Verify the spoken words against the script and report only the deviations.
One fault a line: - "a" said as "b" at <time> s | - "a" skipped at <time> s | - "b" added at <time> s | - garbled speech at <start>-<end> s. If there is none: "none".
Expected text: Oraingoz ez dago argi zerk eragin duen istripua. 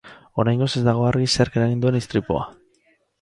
none